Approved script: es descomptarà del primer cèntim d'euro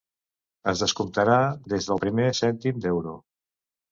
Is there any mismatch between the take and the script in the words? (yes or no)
yes